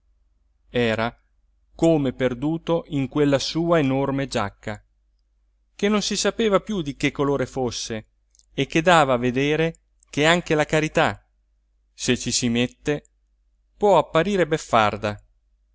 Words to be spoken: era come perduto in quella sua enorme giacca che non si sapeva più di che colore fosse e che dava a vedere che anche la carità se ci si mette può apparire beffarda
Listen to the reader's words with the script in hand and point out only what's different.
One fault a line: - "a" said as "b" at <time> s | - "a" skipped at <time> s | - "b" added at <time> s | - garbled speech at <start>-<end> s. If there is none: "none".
none